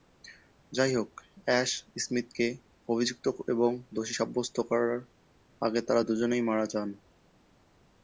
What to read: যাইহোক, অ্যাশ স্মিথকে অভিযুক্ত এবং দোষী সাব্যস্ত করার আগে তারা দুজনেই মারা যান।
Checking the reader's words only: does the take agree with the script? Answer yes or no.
yes